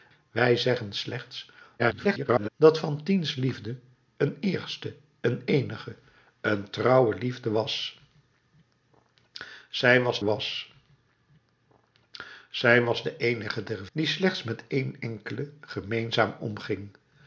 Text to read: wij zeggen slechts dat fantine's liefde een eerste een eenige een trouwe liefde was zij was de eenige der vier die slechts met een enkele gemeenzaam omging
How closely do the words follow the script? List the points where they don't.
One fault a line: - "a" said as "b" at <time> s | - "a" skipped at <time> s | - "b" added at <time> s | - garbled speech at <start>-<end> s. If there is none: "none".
- garbled speech at 1.8-2.5 s
- "was zij was" added at 10.2 s
- "vier" skipped at 13.9 s